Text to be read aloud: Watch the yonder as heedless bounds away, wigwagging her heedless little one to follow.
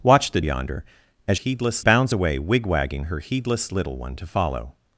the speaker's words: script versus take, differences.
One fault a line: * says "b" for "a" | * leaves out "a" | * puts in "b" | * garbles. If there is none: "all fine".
all fine